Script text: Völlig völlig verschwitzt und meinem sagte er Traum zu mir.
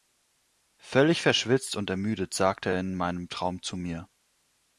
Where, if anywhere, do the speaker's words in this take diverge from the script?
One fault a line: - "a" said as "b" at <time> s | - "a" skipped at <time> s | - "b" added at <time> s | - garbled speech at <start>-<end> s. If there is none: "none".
- "völlig" skipped at 1.2 s
- "meinem" said as "ermüdet" at 1.9 s
- "in meinem" added at 2.8 s